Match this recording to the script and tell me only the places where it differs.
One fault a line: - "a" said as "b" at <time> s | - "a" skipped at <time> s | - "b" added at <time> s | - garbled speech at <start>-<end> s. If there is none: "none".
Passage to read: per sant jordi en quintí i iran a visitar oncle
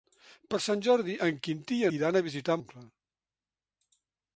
none